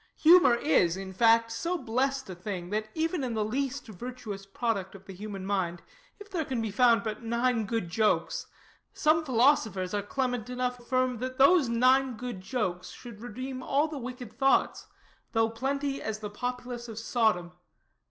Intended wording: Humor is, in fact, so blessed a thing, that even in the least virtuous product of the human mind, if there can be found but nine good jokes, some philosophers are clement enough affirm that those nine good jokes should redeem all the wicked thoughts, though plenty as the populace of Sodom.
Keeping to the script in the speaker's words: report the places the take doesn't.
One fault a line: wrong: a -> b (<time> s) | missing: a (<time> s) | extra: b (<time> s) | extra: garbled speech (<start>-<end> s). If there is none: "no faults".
no faults